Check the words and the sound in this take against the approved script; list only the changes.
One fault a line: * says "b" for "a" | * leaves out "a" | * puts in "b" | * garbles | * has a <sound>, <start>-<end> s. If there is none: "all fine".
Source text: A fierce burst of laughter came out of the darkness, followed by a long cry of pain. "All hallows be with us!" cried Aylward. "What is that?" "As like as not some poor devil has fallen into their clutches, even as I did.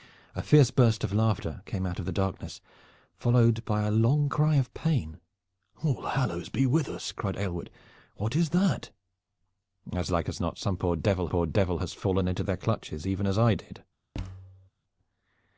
* puts in "poor devil"
* has a thud, 14.1-14.7 s